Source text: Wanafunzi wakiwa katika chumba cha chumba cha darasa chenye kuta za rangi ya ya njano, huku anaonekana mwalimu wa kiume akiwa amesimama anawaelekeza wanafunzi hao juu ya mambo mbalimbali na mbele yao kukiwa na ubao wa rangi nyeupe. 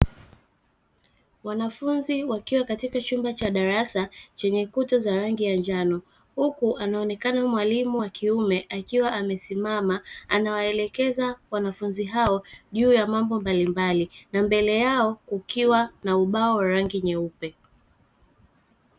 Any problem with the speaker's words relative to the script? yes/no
yes